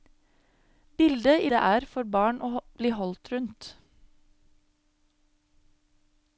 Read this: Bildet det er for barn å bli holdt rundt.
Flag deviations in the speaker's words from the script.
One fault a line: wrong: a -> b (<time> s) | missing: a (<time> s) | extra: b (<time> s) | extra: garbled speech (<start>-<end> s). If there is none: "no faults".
no faults